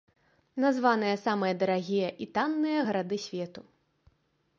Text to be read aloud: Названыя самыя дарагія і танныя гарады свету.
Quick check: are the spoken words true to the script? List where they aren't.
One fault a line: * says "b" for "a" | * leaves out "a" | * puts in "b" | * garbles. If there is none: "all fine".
all fine